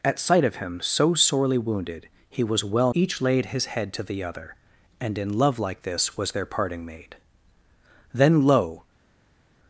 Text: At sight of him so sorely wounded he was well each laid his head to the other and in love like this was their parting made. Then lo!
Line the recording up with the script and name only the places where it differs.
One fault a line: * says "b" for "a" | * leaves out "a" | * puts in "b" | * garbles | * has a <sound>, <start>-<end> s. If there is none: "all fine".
all fine